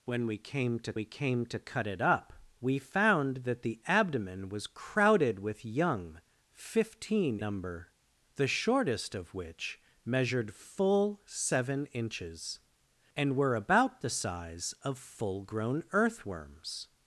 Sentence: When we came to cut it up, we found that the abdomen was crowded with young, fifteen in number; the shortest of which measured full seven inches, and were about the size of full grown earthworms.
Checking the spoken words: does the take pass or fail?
fail